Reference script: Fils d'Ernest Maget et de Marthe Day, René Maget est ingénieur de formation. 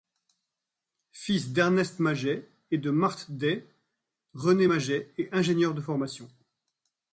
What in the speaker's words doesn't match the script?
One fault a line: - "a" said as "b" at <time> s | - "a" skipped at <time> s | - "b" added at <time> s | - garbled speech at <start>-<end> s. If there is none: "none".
none